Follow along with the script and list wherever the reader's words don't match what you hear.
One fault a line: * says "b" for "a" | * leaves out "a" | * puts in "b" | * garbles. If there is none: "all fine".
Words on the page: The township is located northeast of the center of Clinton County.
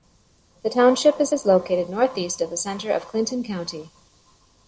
* puts in "is"